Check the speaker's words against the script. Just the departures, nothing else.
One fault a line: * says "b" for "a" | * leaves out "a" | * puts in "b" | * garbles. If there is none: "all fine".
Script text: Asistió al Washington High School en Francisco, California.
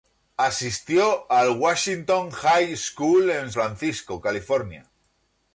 all fine